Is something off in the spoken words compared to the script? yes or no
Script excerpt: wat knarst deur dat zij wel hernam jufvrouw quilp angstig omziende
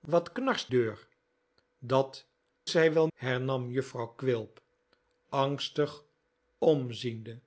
no